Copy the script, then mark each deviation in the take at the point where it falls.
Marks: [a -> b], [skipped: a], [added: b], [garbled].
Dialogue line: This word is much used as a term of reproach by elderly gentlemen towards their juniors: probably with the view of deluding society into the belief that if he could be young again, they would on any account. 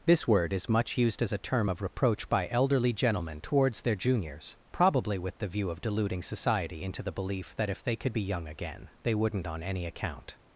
This word is much used as a term of reproach by elderly gentlemen towards their juniors: probably with the view of deluding society into the belief that if [he -> they] could be young again, they [would -> wouldn't] on any account.